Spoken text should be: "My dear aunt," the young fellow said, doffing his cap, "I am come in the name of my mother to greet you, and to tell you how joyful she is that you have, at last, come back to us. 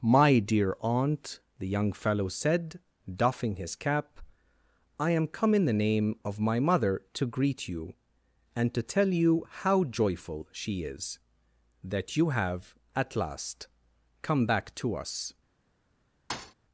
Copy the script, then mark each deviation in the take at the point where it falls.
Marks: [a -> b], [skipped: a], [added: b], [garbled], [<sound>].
"My dear aunt," the young fellow said, doffing his cap, "I am come in the name of my mother to greet you, and to tell you how joyful she is that you have, at last, come back to us. [thud]